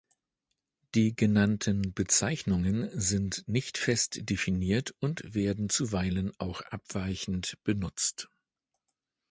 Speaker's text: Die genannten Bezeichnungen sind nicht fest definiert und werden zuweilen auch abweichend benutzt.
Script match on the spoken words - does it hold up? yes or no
yes